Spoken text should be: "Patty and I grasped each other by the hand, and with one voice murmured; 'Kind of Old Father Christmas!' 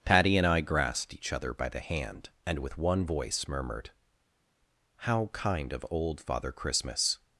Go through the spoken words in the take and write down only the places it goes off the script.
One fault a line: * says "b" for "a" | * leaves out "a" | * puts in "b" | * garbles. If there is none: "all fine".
* puts in "How"